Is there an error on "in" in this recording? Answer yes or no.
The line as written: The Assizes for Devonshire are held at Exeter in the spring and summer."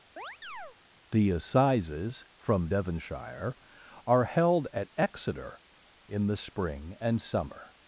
no